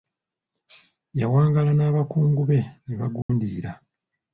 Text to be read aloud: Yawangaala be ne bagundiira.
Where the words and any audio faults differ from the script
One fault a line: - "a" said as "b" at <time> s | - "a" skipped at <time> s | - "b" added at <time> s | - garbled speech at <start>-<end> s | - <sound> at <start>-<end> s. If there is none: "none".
- "n'abakungu" added at 1.8 s
- dropout at 3.2-3.3 s